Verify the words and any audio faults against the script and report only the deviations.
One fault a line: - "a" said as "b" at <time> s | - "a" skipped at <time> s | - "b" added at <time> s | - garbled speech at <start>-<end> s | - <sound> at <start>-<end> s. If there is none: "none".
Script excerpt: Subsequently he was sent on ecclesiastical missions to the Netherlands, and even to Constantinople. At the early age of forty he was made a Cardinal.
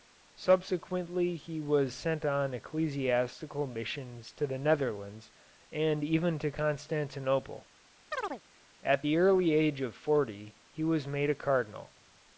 - chirp at 8.1-8.4 s